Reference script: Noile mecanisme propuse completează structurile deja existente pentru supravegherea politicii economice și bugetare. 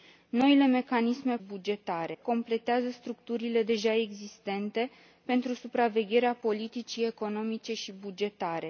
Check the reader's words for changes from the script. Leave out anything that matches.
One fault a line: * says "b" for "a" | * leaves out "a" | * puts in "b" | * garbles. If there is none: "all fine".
* says "bugetare" for "propuse"